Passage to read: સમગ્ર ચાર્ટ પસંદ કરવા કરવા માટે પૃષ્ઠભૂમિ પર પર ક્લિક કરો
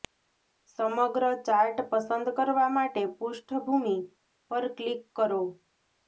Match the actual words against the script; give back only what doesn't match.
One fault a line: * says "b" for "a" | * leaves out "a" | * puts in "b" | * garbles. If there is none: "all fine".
* leaves out "કરવા"
* leaves out "પર"